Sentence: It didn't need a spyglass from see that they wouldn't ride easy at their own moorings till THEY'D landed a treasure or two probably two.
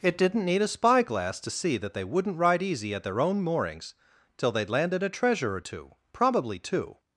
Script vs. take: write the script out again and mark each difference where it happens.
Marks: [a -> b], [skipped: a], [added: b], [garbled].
It didn't need a spyglass [from -> to] see that they wouldn't ride easy at their own moorings till THEY'D landed a treasure or two probably two.